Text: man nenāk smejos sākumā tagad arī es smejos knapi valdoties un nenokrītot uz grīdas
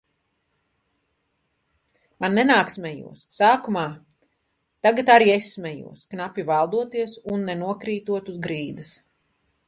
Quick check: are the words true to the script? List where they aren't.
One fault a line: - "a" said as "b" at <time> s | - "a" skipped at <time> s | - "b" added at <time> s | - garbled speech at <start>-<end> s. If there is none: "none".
none